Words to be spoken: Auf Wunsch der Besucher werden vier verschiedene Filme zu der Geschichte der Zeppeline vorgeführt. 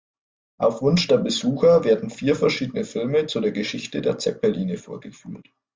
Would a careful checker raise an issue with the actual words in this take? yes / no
no